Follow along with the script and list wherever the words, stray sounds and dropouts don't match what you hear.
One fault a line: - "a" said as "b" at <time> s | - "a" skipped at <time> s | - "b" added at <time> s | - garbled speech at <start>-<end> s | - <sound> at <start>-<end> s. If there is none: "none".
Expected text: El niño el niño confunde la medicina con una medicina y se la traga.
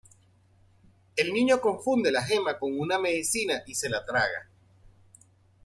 - "el niño" skipped at 1.6 s
- "medicina" said as "gema" at 2.2 s